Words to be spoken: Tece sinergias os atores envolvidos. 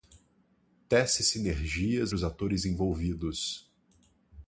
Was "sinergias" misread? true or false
false